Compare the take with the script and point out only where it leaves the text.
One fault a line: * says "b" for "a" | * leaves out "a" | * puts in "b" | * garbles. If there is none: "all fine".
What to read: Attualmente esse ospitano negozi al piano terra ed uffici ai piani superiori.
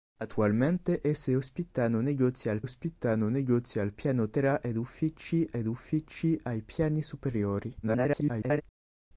* puts in "ospitano negozi al"
* puts in "ed uffici"
* garbles